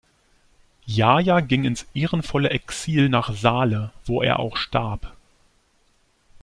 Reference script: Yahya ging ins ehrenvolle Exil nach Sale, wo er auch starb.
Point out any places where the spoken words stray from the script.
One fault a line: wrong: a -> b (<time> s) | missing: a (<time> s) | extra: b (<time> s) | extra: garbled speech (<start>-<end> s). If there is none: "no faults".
no faults